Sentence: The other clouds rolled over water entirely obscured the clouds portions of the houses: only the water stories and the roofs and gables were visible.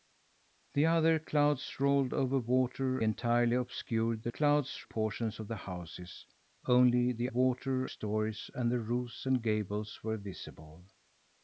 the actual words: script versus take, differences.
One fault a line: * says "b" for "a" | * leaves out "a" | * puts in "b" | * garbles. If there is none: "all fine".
all fine